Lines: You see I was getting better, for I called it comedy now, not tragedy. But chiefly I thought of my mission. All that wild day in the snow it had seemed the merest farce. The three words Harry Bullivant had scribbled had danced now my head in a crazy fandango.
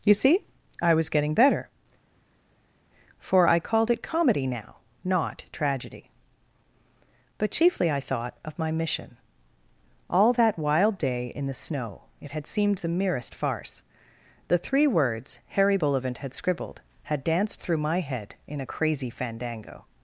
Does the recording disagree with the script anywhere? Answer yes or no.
yes